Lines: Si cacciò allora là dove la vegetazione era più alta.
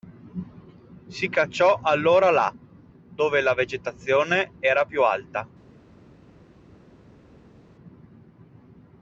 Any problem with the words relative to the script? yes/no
no